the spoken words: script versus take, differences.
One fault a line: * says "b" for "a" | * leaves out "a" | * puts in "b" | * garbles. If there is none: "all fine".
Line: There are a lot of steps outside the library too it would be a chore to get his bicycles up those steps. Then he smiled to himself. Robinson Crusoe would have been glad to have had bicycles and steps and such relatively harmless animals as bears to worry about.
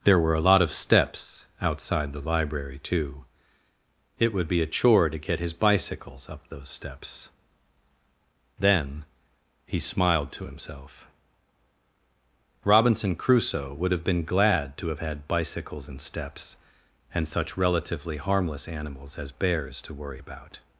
* says "were" for "are"